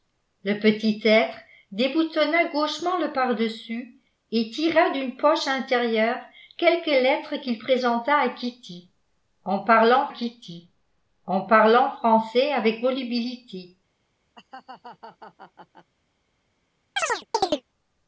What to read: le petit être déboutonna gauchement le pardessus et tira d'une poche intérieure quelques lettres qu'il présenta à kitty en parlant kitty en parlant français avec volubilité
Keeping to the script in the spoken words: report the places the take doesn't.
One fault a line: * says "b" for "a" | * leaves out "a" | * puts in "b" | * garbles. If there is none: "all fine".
all fine